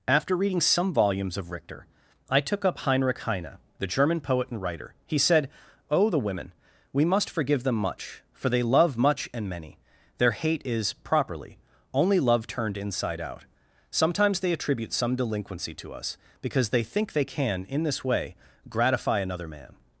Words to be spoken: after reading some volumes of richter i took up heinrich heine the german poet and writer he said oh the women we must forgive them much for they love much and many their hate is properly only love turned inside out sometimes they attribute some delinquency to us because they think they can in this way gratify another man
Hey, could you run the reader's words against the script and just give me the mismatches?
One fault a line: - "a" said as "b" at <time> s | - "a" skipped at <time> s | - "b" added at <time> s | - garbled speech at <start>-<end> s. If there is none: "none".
none